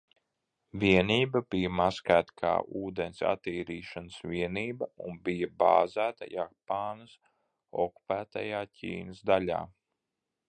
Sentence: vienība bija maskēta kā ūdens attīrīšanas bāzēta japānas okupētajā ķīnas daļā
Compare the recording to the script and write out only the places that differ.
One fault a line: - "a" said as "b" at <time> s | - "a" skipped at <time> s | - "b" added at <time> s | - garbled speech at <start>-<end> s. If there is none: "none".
- "vienība un bija" added at 4.3 s